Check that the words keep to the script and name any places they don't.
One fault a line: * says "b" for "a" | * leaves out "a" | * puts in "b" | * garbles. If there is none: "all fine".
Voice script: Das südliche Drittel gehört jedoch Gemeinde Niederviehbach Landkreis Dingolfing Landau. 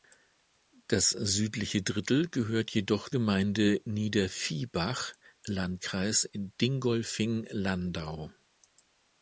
all fine